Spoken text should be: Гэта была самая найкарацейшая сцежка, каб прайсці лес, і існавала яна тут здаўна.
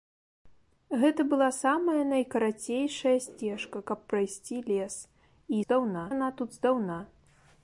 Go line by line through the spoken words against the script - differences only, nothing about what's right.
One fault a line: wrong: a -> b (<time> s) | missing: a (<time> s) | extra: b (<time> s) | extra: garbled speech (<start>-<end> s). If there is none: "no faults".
wrong: існавала -> здаўна (5.6 s)